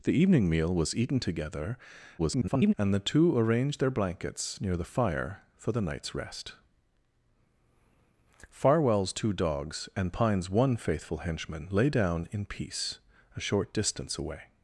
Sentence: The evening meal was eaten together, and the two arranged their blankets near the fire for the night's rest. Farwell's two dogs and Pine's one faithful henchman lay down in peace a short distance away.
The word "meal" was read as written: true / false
true